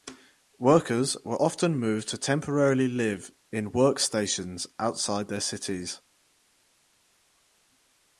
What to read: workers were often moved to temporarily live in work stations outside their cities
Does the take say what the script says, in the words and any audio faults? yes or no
yes